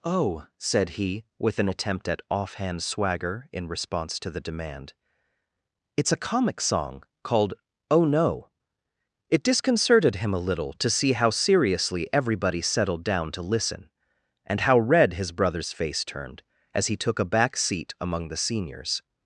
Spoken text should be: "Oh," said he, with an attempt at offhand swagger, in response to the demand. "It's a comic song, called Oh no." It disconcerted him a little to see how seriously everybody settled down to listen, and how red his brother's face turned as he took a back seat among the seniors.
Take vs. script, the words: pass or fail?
pass